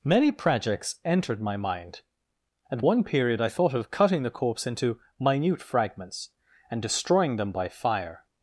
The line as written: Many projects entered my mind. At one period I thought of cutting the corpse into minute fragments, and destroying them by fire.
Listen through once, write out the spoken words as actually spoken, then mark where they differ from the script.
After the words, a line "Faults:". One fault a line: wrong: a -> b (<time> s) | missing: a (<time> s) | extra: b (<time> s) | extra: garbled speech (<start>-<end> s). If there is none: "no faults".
Many projects entered my mind. At one period I thought of cutting the corpse into minute fragments, and destroying them by fire.
Faults:
no faults